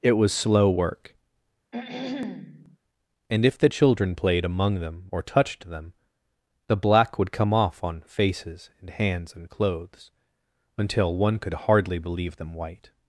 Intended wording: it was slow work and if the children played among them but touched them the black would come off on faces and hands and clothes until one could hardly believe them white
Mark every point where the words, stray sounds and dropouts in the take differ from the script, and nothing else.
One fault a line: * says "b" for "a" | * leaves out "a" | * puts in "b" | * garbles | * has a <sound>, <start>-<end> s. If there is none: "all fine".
* has a throat clearing, 1.7-2.8 s
* says "or" for "but"